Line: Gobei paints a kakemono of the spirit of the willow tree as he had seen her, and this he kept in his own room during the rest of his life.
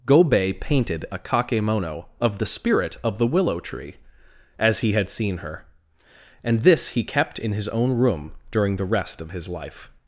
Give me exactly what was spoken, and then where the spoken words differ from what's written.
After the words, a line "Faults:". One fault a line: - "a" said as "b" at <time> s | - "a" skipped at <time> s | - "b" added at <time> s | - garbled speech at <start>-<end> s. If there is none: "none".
Gobei painted a kakemono of the spirit of the willow tree as he had seen her, and this he kept in his own room during the rest of his life.
Faults:
- "paints" said as "painted" at 0.6 s